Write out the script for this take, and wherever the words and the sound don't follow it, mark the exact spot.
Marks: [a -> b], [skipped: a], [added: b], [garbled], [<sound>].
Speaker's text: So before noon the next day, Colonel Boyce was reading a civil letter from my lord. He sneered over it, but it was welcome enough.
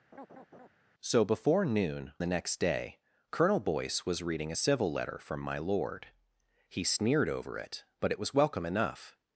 [laugh] So before noon the next day, Colonel Boyce was reading a civil letter from my lord. He sneered over it, but it was welcome enough.